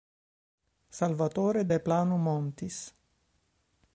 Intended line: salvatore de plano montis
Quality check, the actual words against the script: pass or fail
pass